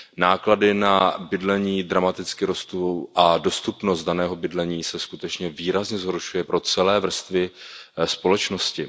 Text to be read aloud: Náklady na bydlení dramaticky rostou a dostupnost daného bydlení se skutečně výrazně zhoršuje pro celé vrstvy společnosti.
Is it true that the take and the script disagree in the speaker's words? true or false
false